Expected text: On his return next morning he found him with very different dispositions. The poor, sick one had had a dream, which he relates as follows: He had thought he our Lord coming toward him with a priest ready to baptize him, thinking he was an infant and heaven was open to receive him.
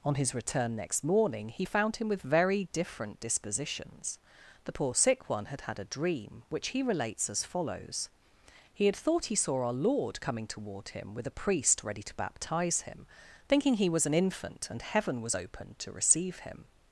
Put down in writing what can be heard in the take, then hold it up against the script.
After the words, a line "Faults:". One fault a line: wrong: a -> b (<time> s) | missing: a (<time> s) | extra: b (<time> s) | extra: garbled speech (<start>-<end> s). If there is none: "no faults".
On his return next morning he found him with very different dispositions. The poor, sick one had had a dream, which he relates as follows: He had thought he saw our Lord coming toward him with a priest ready to baptize him, thinking he was an infant and heaven was open to receive him.
Faults:
extra: saw (9.4 s)